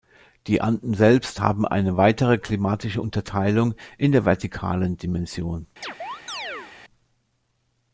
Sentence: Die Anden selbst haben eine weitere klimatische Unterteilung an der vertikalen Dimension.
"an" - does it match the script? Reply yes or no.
no